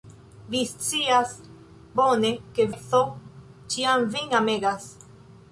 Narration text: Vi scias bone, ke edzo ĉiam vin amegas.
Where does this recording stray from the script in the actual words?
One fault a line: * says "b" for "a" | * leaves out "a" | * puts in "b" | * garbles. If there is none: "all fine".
all fine